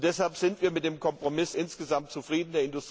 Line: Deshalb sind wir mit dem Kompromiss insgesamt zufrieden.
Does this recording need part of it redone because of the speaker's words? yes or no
no